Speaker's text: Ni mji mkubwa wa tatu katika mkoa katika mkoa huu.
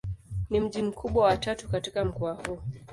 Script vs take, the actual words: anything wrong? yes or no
yes